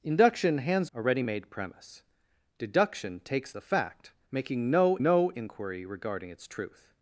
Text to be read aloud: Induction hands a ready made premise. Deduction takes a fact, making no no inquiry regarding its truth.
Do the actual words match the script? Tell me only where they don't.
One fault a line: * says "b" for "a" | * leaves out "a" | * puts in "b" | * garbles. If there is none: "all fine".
all fine